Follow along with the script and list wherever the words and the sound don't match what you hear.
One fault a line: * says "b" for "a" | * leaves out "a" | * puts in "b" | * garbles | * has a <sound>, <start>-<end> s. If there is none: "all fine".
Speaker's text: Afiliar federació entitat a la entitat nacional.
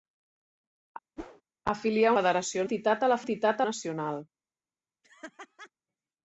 * has a whoosh, 1.2-1.4 s
* has a laugh, 5.0-5.7 s